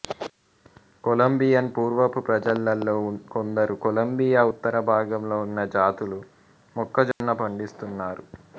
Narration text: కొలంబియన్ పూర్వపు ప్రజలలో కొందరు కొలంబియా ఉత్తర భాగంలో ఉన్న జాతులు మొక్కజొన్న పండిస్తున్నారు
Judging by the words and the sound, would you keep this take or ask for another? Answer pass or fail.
fail